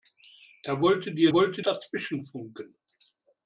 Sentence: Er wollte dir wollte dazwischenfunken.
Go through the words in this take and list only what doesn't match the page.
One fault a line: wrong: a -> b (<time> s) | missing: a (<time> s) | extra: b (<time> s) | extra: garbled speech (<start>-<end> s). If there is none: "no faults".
no faults